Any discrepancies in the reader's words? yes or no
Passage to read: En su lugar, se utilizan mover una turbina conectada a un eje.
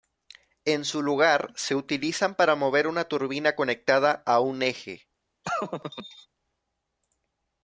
yes